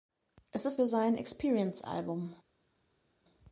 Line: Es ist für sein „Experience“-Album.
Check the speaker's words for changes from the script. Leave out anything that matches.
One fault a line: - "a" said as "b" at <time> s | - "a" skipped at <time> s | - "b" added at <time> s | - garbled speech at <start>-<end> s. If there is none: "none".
none